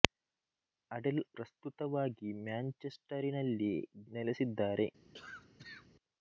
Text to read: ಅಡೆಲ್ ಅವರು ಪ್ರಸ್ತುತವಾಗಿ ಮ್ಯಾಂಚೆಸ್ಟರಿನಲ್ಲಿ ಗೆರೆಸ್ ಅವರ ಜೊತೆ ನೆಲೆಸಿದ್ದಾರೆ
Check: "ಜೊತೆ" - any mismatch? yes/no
yes